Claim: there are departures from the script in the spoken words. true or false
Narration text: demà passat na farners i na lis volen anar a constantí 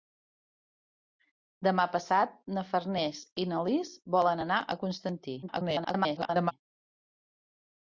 true